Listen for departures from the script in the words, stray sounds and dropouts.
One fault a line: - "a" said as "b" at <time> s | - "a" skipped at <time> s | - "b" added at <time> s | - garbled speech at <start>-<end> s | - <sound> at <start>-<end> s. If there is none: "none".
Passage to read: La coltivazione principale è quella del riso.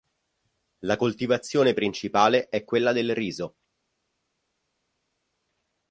none